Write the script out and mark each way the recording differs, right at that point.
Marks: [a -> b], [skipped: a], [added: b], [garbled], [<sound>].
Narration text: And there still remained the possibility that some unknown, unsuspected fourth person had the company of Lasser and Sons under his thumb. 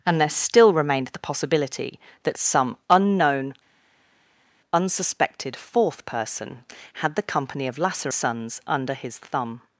And there still remained the possibility that some unknown, unsuspected fourth person had the company of Lasser [skipped: and] Sons under his thumb.